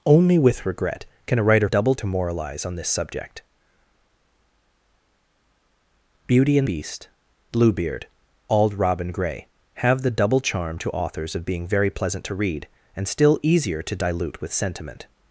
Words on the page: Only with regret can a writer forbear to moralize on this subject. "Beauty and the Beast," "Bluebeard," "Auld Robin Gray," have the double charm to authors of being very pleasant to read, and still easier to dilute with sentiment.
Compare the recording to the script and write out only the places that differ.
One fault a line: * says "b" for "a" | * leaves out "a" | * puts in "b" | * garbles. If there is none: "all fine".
* says "double" for "forbear"
* leaves out "the"